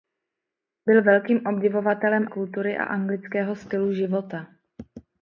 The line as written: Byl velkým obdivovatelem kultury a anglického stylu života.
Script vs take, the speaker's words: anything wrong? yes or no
no